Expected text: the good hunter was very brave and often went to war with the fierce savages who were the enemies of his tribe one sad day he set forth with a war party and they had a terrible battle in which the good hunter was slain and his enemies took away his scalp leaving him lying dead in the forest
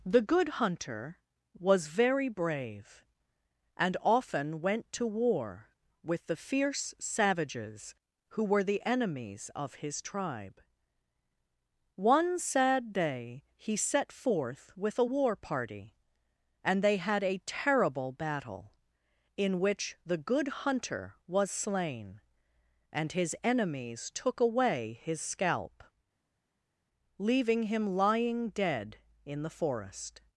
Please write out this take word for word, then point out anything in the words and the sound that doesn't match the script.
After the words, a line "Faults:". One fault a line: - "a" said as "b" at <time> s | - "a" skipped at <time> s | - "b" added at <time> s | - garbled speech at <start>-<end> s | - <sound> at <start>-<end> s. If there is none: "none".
the good hunter was very brave and often went to war with the fierce savages who were the enemies of his tribe one sad day he set forth with a war party and they had a terrible battle in which the good hunter was slain and his enemies took away his scalp leaving him lying dead in the forest
Faults:
none